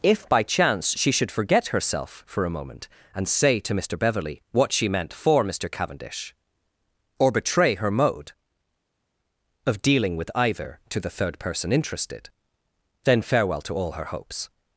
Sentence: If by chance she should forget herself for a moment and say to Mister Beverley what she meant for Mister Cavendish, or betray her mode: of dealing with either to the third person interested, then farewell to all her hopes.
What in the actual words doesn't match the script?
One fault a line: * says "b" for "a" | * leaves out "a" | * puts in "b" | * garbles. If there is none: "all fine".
all fine